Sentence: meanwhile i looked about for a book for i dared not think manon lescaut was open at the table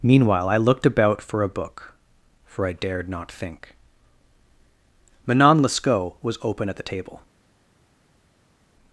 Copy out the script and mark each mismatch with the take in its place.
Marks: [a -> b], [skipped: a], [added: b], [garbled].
meanwhile i looked about for a book for i dared not think manon lescaut was open at the table